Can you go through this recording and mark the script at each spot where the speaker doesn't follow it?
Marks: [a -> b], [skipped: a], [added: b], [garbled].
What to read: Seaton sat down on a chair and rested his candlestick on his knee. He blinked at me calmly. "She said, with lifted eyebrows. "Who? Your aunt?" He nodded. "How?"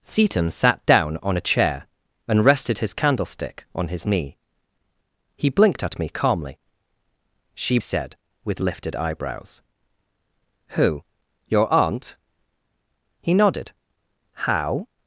Seaton sat down on a chair and rested his candlestick on his knee. He blinked at me calmly. "She said, with lifted eyebrows. "Who? Your aunt?" He nodded. "How?"